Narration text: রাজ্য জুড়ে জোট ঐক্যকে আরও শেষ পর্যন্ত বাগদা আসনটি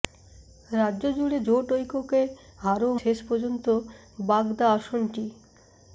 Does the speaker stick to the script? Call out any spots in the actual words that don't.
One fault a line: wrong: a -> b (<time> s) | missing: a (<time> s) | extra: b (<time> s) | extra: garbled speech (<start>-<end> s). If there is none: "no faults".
no faults